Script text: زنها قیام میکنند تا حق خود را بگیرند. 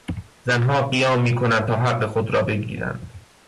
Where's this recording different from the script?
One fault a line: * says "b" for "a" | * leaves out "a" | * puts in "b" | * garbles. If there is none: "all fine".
all fine